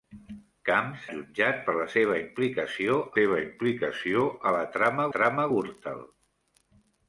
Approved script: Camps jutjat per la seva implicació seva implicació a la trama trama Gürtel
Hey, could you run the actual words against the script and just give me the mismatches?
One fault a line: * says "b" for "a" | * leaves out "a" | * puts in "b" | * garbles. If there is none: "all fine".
all fine